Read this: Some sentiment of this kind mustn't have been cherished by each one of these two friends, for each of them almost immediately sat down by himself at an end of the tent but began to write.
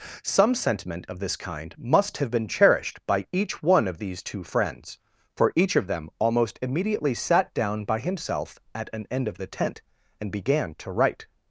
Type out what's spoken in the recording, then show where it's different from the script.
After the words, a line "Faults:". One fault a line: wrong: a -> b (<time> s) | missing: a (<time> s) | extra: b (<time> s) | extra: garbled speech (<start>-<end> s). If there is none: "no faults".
Some sentiment of this kind must have been cherished by each one of these two friends, for each of them almost immediately sat down by himself at an end of the tent and began to write.
Faults:
wrong: mustn't -> must (1.8 s)
wrong: but -> and (10.2 s)